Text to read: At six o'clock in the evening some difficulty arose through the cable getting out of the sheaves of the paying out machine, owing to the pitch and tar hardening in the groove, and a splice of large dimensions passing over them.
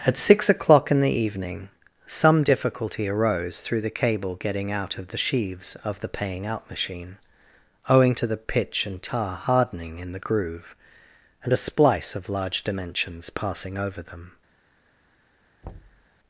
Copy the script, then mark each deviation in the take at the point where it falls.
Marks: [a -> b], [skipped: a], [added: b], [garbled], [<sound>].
At six o'clock in the evening some difficulty arose through the cable getting out of the sheaves of the paying out machine, owing to the pitch and tar hardening in the groove, and a splice of large dimensions passing over them. [thud]